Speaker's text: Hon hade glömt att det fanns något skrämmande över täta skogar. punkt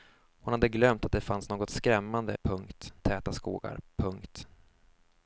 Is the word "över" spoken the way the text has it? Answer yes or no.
no